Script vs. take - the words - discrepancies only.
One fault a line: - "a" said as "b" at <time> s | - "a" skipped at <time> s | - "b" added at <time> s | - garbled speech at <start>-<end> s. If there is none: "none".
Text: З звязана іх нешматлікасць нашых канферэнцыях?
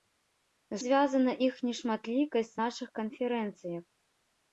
none